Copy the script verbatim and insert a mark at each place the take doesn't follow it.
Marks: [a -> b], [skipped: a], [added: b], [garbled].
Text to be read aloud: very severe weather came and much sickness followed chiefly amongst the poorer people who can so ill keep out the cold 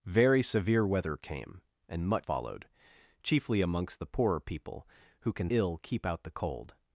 very severe weather came and much [skipped: sickness] followed chiefly amongst the poorer people who can [skipped: so] ill keep out the cold